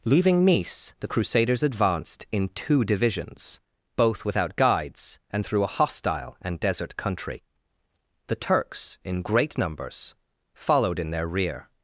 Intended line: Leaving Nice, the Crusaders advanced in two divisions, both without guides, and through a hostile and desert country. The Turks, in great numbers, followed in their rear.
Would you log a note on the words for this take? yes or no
no